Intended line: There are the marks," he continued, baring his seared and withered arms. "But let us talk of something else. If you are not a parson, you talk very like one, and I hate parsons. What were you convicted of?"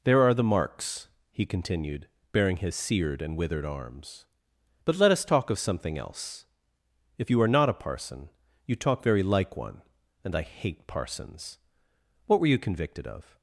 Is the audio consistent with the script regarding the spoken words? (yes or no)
yes